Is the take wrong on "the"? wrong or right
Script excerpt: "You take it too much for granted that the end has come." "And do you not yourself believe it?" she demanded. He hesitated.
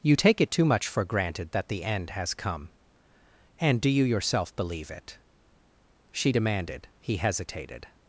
right